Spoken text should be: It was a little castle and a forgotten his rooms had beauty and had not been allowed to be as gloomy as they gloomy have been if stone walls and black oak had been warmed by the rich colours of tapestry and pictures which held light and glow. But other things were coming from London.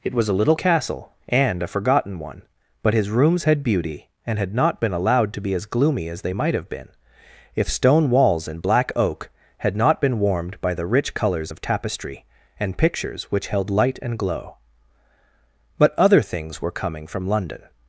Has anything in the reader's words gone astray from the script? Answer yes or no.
yes